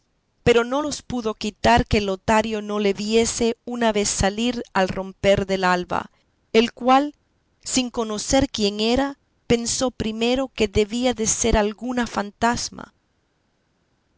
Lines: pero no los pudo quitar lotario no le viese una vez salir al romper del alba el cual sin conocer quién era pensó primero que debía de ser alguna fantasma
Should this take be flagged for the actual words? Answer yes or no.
yes